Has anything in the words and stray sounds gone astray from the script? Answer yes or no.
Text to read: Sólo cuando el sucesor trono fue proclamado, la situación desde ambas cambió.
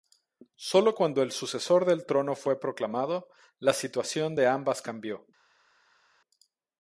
yes